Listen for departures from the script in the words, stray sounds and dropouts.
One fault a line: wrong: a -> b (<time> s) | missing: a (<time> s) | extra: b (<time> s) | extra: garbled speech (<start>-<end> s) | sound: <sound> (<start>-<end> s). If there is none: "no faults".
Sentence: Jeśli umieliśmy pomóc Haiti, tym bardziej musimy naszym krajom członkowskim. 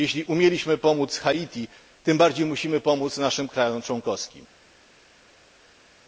extra: pomóc (2.8 s)